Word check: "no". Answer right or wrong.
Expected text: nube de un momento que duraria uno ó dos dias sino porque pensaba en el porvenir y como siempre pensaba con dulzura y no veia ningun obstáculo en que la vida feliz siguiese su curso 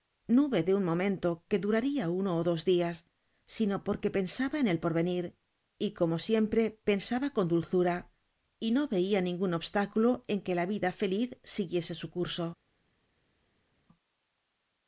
right